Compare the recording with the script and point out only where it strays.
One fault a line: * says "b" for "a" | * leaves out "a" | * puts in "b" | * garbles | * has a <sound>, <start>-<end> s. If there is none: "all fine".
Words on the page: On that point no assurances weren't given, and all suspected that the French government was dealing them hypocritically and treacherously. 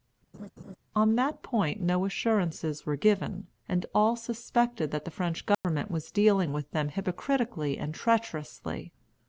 * has a laugh, 0.3-0.8 s
* says "were" for "weren't"
* has a dropout, 5.5-5.6 s
* puts in "with"